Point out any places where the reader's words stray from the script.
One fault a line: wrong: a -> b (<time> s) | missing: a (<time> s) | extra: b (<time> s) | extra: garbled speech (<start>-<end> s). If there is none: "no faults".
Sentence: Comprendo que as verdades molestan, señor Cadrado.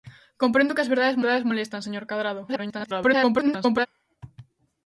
extra: verdades (1.2 s)
extra: garbled speech (2.5-3.9 s)